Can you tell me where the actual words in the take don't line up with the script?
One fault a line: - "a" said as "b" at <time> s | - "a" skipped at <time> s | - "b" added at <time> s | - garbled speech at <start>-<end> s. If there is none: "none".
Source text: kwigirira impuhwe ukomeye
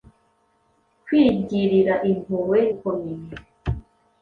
none